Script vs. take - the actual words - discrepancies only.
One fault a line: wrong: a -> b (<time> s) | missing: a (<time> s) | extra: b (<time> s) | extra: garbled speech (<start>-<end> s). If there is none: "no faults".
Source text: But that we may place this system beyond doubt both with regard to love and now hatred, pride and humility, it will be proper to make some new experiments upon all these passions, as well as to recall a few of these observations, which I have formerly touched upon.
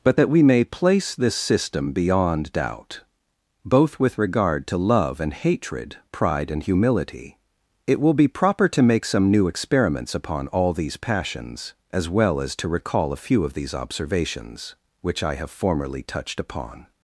missing: now (5.3 s)